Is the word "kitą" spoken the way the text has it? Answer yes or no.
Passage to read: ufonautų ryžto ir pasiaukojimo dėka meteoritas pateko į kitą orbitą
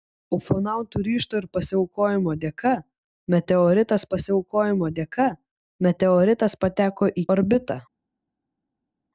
no